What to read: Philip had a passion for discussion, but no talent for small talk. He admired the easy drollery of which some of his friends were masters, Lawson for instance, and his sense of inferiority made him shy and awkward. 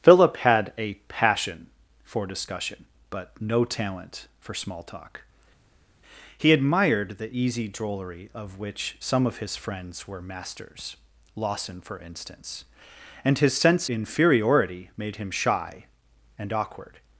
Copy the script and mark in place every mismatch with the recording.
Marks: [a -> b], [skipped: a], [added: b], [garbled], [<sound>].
Philip had a passion for discussion, but no talent for small talk. He admired the easy drollery of which some of his friends were masters, Lawson for instance, and his sense [skipped: of] inferiority made him shy and awkward.